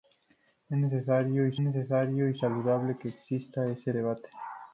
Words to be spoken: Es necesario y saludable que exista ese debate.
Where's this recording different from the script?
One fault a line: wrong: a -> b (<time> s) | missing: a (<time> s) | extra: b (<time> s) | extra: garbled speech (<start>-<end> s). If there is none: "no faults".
extra: necesario y (1.6 s)